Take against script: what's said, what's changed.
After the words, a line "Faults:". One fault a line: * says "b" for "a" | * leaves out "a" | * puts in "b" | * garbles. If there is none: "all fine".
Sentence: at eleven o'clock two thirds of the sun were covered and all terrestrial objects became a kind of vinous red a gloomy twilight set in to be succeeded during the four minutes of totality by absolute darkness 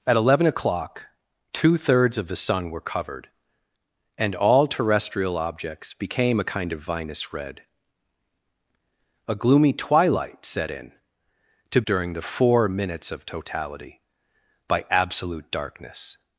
at eleven o'clock two thirds of the sun were covered and all terrestrial objects became a kind of vinous red a gloomy twilight set in to during the four minutes of totality by absolute darkness
Faults:
* leaves out "be succeeded"